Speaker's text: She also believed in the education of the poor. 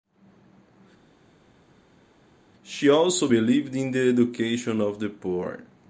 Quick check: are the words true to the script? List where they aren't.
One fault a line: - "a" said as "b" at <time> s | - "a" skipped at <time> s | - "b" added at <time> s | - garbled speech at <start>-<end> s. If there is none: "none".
none